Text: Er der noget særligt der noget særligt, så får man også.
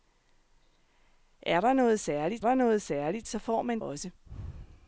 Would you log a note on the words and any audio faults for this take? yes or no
no